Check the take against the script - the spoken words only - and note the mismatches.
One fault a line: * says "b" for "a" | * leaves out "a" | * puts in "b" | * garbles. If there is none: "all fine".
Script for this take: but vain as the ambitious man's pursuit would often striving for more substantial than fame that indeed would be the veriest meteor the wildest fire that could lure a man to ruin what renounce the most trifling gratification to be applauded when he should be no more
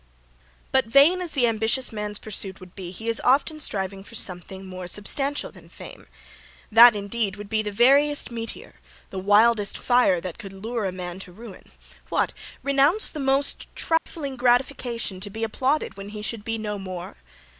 * puts in "be he is"
* puts in "something"